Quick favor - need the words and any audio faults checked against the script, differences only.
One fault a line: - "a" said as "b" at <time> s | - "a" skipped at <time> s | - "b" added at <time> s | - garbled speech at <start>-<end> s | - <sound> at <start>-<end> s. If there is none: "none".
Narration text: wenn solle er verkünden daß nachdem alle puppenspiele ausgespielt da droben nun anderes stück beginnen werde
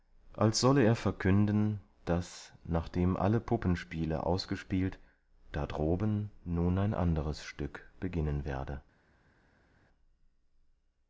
- "wenn" said as "als" at 0.3 s
- "ein" added at 6.8 s